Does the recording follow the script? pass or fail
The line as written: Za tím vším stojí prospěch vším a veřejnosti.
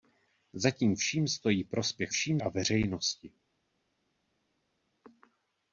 pass